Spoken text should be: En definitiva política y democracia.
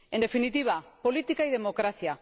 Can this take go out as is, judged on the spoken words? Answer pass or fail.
pass